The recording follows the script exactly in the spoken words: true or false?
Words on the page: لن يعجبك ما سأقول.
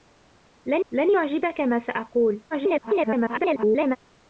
false